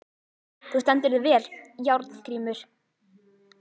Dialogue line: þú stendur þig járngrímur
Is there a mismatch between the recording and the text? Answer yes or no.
yes